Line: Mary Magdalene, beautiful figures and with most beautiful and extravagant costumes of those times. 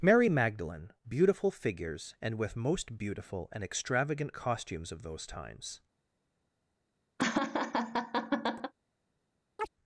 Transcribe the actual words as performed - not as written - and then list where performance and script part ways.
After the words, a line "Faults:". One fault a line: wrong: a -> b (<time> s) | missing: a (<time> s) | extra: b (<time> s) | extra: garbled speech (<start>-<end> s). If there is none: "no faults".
Mary Magdalene, beautiful figures and with most beautiful and extravagant costumes of those times.
Faults:
no faults